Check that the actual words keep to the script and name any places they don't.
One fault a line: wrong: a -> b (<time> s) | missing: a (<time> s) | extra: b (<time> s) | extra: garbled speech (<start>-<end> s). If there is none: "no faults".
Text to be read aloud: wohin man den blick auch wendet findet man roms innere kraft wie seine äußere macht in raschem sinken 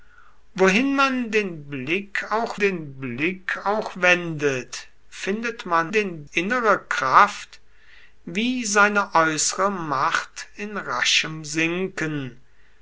extra: den blick auch (2.6 s)
wrong: roms -> den (5.9 s)